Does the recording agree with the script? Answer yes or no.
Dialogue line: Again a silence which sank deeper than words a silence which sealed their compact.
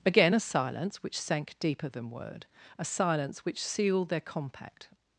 no